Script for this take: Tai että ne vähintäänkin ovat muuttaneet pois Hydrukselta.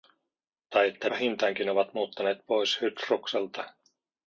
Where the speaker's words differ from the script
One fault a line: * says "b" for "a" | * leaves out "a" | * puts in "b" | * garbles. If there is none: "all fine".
* leaves out "ne"